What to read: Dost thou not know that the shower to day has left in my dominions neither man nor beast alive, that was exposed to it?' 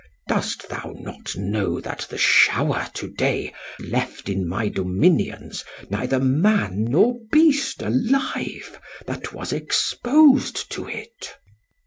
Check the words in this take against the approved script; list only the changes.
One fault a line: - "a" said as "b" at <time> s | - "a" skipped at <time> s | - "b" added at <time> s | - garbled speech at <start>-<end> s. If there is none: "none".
- "has" skipped at 3.5 s